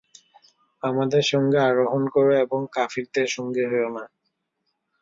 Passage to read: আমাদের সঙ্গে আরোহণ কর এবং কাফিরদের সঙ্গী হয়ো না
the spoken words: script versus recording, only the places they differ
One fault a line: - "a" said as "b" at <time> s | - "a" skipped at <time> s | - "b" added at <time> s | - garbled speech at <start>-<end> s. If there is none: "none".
none